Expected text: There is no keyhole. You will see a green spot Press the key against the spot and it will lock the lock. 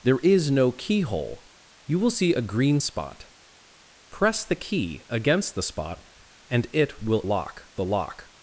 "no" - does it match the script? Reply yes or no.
yes